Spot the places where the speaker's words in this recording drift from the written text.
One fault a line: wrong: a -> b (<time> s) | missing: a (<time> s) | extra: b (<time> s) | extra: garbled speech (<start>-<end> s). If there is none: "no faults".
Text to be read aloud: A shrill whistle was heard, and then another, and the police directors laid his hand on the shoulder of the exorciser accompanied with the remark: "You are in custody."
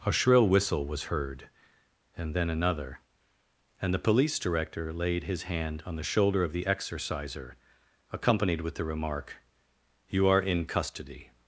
wrong: directors -> director (4.4 s)